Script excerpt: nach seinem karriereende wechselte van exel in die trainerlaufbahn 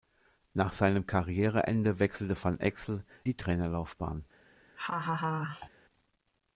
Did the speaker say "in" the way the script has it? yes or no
no